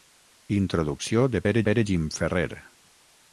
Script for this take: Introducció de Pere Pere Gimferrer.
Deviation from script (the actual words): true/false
false